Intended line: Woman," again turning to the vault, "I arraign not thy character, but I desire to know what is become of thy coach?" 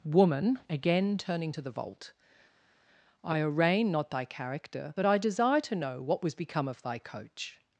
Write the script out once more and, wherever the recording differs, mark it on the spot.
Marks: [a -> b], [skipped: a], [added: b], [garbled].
Woman," again turning to the vault, "I arraign not thy character, but I desire to know what [is -> was] become of thy coach?"